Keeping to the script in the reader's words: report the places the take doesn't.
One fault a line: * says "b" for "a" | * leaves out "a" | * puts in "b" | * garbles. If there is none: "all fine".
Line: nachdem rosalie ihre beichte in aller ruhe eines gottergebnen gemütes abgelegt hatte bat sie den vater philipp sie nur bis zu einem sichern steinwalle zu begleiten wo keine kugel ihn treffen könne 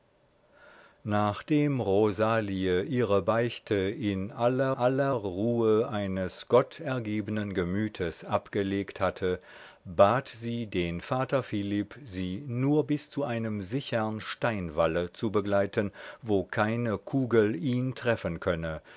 * puts in "aller"